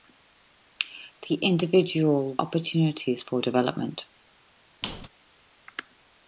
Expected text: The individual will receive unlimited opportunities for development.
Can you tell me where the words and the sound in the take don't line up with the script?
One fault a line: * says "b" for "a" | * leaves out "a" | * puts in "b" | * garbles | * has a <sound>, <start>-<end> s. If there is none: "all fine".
* leaves out "will receive unlimited"
* has a squeak, 4.8-5.1 s